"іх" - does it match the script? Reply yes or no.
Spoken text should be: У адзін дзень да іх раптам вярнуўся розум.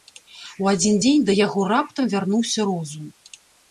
no